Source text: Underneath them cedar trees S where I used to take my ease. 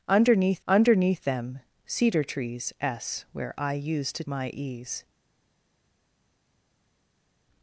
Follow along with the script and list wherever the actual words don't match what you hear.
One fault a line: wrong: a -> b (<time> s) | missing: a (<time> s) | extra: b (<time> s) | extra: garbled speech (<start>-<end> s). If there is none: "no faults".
extra: underneath (0.7 s)
missing: take (4.2 s)